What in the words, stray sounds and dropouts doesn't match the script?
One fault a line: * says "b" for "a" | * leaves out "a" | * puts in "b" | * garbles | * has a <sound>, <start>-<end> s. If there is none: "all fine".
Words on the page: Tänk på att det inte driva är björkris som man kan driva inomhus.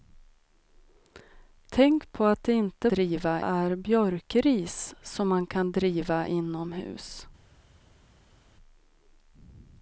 all fine